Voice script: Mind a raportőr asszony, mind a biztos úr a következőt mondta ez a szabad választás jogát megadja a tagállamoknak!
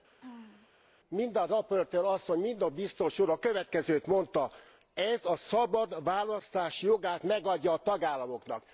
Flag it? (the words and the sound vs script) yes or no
yes